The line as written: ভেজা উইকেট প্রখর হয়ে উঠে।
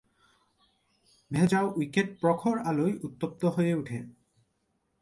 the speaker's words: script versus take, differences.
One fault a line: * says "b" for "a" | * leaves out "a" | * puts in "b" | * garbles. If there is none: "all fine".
* puts in "আলোয় উত্তপ্ত"